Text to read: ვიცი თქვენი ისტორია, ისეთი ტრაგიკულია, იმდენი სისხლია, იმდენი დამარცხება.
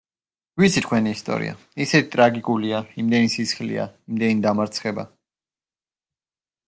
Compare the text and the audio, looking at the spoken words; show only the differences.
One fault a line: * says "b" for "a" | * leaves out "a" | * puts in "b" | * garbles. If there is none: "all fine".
all fine